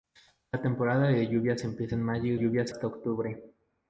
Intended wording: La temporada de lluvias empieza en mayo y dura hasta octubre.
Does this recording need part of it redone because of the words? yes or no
yes